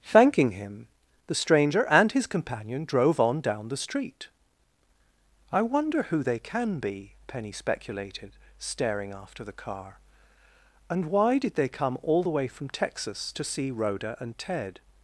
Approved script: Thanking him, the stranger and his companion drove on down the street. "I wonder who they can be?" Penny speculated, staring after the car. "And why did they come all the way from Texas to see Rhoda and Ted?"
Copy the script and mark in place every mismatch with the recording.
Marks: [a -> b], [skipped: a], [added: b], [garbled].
Thanking him, the stranger and his companion drove on down the street. "I wonder who they can be?" Penny speculated, staring after the car. "And why did they come all the way from Texas to see Rhoda and Ted?"